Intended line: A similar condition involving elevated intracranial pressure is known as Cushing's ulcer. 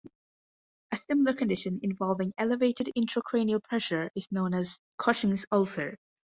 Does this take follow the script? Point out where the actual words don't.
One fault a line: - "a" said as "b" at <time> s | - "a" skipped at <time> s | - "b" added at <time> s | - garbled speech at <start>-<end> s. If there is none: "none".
none